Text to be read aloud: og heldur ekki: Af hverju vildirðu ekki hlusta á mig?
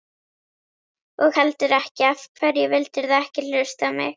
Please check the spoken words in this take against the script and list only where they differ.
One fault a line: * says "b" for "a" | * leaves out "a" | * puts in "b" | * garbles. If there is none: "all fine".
all fine